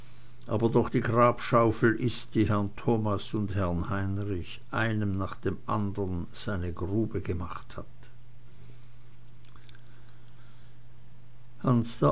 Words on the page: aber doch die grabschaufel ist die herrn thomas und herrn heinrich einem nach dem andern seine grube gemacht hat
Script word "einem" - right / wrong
right